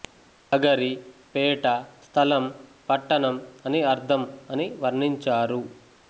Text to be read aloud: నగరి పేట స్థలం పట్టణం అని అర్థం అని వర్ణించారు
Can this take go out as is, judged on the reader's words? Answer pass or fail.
pass